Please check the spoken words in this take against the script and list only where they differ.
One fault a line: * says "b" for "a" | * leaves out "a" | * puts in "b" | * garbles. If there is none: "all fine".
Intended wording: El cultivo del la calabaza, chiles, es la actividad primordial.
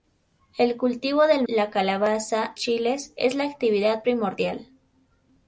all fine